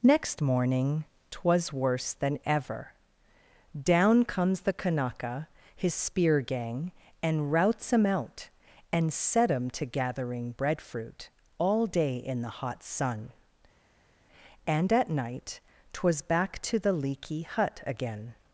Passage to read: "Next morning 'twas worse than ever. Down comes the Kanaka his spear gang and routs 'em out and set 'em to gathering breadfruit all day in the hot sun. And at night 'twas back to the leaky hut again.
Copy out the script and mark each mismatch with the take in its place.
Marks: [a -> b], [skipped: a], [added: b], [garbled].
"Next morning 'twas worse than ever. Down comes the Kanaka his spear gang and routs 'em out and set 'em to gathering breadfruit all day in the hot sun. And at night 'twas back to the leaky hut again.